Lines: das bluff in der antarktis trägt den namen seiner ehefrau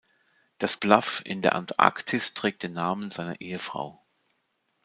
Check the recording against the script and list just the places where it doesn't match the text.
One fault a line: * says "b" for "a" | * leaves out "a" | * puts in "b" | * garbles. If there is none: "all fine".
all fine